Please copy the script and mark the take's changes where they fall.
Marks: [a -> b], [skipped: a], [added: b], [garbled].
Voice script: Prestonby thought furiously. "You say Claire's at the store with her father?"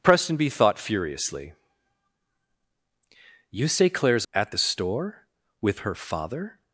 Prestonby thought furiously. "You say Claire's at the store with her father?"